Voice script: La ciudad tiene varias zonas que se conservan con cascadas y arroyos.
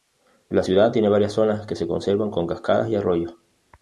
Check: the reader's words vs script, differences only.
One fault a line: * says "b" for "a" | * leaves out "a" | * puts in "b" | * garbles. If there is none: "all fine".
all fine